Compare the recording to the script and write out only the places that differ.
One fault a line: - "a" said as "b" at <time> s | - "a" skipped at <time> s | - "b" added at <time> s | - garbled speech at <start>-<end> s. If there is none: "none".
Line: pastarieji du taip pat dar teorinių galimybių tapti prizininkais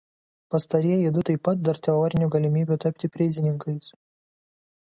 none